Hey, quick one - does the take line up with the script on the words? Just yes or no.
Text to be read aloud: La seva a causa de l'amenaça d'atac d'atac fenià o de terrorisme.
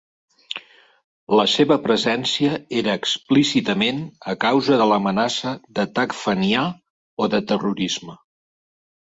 no